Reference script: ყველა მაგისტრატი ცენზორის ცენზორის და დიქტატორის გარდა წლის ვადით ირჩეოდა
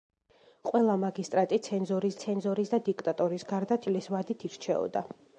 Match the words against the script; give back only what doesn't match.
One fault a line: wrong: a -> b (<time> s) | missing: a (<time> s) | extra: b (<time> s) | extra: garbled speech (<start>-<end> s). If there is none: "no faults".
no faults